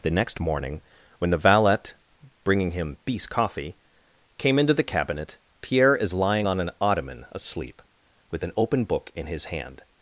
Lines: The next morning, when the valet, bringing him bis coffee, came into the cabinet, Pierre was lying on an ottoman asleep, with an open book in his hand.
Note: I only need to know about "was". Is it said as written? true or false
false